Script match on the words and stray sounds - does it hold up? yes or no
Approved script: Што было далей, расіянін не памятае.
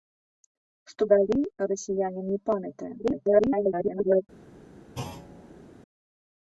no